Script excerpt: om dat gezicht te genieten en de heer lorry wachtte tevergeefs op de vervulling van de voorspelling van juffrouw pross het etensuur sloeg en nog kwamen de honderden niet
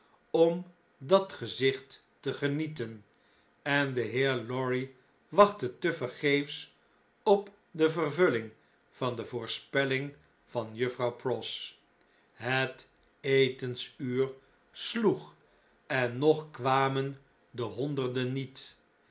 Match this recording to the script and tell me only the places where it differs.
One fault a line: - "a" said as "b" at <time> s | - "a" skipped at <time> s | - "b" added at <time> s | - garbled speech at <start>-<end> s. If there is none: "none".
none